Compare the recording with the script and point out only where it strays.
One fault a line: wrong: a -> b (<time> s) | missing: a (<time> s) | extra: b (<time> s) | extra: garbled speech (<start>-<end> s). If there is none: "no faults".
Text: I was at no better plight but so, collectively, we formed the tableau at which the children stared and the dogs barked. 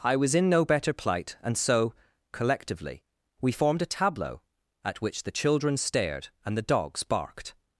wrong: at -> in (0.3 s)
wrong: but -> and (1.4 s)
wrong: the -> a (3.8 s)